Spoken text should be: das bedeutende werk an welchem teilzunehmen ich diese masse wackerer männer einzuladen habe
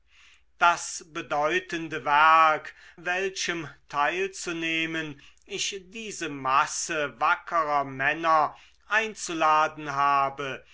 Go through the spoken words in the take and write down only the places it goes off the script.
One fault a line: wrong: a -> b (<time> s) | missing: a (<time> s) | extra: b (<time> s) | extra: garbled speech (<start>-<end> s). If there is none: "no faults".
missing: an (2.7 s)